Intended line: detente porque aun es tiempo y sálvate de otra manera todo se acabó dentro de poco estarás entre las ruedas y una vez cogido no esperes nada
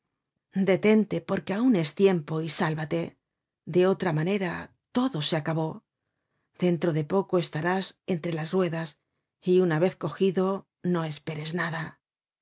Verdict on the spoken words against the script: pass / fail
pass